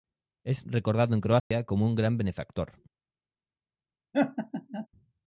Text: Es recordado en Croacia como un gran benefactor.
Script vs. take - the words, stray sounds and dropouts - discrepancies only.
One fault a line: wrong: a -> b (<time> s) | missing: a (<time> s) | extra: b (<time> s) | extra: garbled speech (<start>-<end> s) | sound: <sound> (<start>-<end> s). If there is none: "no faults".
sound: dropout (1.4-1.5 s)
sound: laugh (4.1-4.9 s)